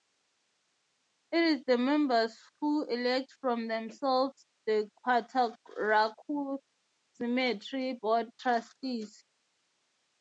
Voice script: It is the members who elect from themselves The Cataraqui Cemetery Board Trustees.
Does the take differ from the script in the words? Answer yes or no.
no